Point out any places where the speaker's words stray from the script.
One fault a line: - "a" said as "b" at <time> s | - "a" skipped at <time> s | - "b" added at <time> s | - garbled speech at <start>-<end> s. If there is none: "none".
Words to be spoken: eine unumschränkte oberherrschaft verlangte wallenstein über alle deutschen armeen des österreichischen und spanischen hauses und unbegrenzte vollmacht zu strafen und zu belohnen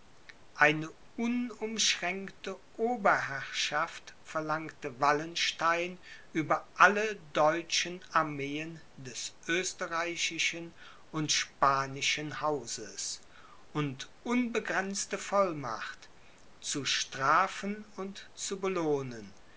none